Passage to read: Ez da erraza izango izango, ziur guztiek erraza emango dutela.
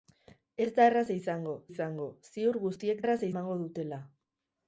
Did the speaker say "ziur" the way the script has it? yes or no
yes